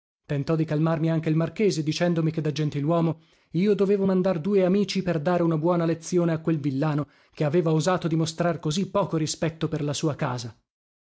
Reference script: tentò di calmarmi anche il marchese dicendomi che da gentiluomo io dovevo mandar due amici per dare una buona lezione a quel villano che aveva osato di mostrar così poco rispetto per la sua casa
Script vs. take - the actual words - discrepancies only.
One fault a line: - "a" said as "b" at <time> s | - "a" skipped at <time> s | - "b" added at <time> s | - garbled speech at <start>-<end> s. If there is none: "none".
none